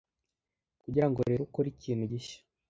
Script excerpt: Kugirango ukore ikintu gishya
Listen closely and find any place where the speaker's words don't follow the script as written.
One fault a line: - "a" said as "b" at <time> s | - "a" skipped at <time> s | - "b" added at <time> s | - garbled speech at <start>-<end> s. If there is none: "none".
- "rero" added at 1.3 s